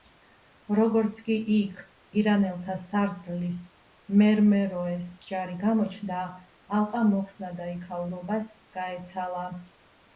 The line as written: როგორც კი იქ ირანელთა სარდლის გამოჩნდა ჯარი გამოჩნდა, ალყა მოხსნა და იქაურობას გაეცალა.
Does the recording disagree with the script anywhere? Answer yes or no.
yes